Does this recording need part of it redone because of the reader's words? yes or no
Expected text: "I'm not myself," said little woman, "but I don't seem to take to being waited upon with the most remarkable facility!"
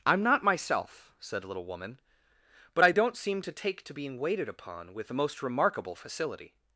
no